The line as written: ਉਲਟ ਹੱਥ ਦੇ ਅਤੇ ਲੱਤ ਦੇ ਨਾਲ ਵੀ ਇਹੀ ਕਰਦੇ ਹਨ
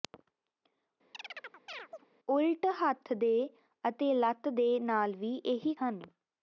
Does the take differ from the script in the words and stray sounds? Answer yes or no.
yes